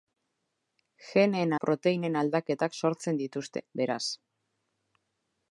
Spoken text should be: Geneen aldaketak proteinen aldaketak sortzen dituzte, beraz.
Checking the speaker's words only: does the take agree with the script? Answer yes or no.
no